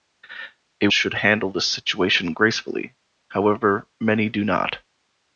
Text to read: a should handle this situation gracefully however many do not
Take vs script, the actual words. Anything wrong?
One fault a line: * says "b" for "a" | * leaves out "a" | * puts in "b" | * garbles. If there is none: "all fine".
all fine